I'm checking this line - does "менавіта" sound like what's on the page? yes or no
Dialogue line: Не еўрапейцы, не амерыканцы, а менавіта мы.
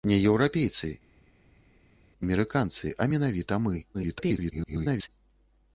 yes